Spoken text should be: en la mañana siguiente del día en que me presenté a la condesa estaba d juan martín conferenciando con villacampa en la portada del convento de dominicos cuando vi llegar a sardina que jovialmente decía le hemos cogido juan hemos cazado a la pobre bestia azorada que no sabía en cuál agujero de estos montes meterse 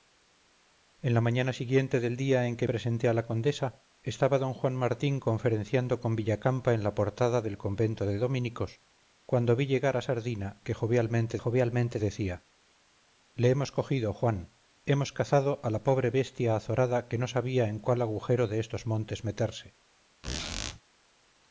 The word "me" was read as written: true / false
false